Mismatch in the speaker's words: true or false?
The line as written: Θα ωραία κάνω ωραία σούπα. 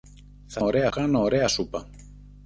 false